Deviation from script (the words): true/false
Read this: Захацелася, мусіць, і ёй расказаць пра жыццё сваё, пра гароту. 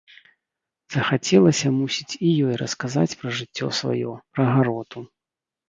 false